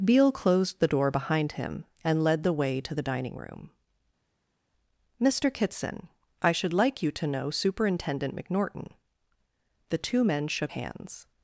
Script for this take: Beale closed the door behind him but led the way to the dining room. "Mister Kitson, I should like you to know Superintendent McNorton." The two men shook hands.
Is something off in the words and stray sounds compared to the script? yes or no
yes